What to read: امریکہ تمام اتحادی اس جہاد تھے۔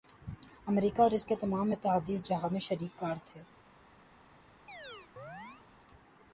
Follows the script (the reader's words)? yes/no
no